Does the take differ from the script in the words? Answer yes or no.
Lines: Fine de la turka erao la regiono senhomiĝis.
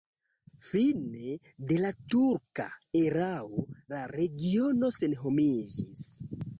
no